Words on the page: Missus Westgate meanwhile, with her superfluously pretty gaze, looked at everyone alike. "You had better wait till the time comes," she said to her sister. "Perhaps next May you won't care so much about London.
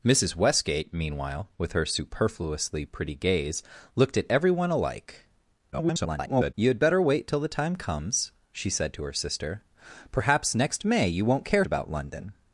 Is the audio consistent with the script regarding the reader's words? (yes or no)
no